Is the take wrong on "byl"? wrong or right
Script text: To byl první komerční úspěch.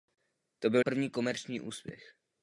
right